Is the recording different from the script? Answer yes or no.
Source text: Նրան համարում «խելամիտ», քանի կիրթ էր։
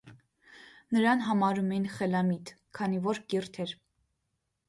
yes